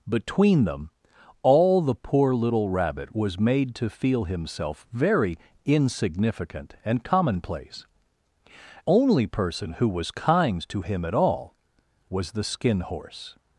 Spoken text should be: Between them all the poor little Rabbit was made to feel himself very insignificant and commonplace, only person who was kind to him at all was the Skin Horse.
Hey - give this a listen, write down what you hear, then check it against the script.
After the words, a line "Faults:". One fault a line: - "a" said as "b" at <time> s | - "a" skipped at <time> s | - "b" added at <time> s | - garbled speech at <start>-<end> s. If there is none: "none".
Between them all the poor little Rabbit was made to feel himself very insignificant and commonplace, only person who was kind to him at all was the Skin Horse.
Faults:
none